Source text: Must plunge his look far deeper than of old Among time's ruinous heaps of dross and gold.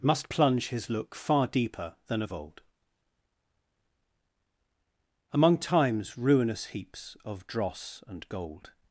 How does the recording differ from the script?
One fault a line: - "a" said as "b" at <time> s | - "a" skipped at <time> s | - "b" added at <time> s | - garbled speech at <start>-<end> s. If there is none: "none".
none